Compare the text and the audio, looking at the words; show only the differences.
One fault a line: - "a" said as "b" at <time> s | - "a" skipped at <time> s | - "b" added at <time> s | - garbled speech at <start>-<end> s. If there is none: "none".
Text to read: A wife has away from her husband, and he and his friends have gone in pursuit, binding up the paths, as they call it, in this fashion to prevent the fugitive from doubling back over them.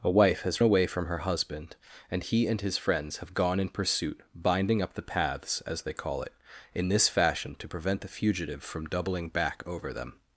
none